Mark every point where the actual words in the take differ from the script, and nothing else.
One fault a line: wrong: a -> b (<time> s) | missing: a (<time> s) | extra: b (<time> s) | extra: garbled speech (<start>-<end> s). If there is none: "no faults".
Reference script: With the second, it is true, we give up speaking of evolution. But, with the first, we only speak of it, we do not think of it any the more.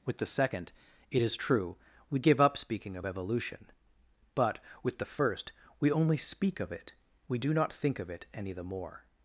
no faults